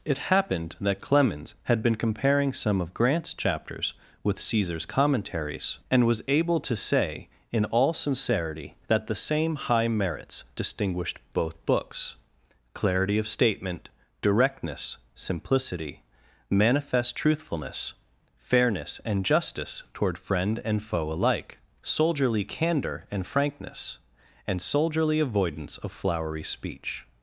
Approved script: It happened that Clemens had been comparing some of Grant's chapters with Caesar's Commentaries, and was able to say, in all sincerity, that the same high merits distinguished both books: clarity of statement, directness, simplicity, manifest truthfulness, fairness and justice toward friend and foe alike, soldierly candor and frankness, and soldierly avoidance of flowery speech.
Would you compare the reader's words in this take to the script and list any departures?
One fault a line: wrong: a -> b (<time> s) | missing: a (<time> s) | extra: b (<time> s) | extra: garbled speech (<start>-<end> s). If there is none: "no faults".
no faults